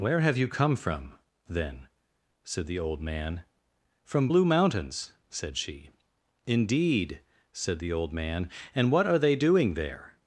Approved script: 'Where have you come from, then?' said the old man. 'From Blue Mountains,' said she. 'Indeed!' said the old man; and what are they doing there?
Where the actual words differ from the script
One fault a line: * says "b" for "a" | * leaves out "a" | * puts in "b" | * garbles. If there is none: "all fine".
all fine